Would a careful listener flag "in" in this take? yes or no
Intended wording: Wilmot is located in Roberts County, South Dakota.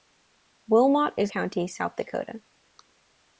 yes